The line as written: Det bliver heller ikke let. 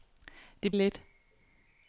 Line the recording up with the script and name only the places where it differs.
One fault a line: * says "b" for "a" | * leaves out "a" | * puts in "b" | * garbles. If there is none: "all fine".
* leaves out "bliver heller ikke"